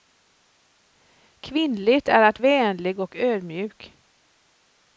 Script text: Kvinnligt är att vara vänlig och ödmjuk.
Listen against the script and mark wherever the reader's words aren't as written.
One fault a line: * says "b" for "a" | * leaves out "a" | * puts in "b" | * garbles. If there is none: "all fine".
* leaves out "vara"